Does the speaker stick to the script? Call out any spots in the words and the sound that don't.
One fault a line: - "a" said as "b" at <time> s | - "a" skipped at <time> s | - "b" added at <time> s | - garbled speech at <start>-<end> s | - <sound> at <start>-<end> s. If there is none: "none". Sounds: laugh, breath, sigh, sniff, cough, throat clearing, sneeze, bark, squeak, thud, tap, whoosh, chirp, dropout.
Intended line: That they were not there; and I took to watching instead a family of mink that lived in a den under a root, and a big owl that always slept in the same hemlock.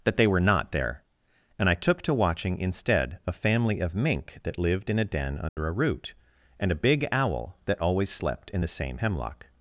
- dropout at 5.5-5.6 s